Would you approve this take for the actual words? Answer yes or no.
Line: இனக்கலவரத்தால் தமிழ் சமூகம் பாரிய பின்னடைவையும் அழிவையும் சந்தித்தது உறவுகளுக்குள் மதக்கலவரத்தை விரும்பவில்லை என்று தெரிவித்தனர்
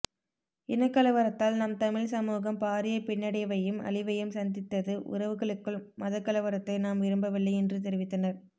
no